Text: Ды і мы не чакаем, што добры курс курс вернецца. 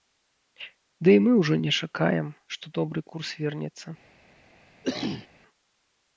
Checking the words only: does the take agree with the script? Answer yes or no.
no